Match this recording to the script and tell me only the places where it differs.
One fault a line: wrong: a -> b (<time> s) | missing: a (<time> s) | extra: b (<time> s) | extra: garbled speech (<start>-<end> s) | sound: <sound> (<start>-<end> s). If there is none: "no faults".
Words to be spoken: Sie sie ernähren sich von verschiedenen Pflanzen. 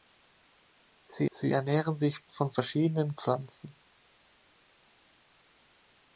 no faults